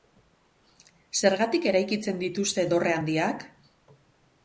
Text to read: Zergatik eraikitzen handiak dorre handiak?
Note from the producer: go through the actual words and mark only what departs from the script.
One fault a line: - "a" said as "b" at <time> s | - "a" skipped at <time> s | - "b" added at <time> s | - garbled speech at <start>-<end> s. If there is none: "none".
- "handiak" said as "dituzte" at 2.2 s